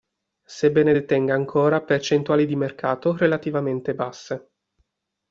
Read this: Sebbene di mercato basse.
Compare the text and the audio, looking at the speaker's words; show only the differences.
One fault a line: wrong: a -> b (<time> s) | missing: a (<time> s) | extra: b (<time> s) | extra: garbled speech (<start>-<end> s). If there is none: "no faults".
extra: detenga ancora percentuali (0.9 s)
extra: relativamente (3.2 s)